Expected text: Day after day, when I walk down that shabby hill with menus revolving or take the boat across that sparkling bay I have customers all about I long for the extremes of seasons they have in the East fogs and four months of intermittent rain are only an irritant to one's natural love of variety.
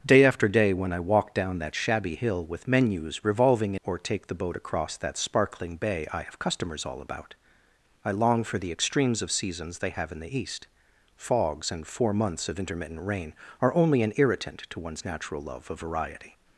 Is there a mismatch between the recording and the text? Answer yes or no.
no